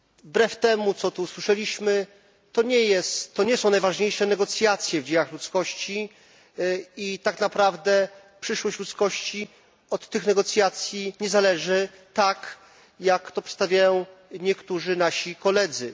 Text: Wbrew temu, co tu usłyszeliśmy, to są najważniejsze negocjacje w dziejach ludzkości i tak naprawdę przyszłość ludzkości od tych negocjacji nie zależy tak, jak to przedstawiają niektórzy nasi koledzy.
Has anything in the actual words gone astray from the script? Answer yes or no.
yes